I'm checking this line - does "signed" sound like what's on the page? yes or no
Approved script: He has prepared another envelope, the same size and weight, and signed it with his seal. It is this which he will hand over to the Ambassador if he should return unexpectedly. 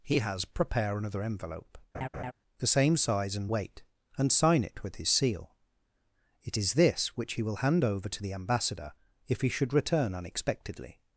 no